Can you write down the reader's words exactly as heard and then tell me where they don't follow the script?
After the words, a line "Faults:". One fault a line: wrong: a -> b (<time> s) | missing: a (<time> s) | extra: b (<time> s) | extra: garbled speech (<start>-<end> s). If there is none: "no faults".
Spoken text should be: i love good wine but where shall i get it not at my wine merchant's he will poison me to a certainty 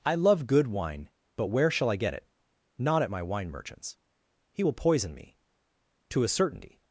i love good wine but where shall i get it not at my wine merchant's he will poison me to a certainty
Faults:
no faults